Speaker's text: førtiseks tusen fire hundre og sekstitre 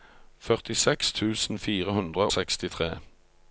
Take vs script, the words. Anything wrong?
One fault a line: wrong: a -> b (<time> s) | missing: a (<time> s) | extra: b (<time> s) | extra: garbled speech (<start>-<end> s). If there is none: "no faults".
missing: og (2.3 s)